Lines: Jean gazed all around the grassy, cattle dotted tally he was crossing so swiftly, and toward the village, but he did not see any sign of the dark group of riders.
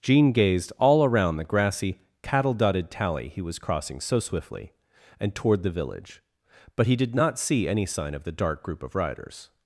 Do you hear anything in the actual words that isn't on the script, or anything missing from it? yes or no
no